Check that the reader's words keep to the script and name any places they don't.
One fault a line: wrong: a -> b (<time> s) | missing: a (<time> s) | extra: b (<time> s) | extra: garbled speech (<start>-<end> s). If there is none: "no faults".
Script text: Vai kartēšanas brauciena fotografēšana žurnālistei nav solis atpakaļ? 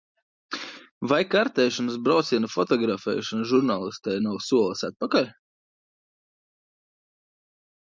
no faults